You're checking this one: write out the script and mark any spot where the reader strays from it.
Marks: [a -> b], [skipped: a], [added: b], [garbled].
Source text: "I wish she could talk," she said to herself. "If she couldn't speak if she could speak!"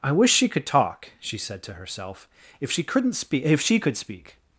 "I wish she could talk," she said to herself. "If she couldn't speak if she could speak!"